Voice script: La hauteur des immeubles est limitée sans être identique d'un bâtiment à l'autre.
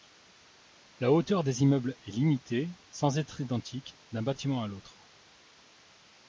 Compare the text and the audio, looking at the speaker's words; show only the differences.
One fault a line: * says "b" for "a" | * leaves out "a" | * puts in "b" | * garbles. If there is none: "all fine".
all fine